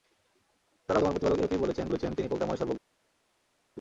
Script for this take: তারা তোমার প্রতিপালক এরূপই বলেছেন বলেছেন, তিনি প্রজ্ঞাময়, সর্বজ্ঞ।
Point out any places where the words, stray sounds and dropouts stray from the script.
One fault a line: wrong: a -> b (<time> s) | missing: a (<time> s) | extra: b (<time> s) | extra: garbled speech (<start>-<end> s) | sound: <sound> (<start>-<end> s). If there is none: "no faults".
no faults